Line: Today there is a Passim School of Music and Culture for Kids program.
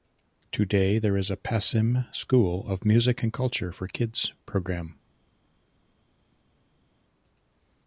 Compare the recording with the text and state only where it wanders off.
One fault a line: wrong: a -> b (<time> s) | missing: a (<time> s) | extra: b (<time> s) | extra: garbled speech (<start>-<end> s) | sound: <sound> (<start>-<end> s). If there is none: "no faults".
no faults